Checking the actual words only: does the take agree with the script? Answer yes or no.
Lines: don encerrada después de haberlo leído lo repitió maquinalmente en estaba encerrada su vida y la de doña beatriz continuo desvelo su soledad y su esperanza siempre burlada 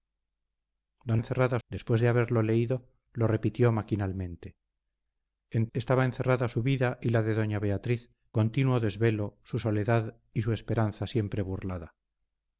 yes